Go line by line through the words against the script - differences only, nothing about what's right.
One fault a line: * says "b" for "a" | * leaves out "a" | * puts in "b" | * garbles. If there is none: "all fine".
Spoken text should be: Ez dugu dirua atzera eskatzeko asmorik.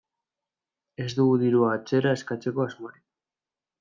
all fine